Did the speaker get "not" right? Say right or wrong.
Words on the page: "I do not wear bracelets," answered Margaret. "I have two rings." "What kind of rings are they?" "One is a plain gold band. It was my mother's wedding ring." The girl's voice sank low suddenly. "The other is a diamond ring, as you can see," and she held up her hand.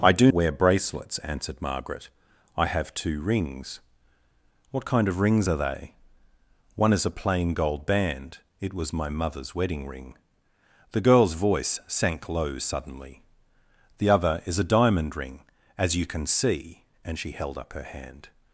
wrong